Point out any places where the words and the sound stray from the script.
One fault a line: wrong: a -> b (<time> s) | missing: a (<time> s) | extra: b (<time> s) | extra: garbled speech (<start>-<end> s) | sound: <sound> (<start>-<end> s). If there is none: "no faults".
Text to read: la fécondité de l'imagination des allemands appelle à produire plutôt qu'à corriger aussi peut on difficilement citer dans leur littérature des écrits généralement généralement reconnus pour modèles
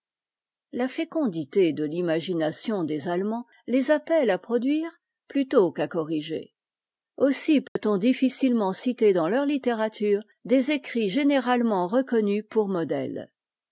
extra: les (3.7 s)
sound: dropout (7.7-7.8 s)
missing: généralement (11.9 s)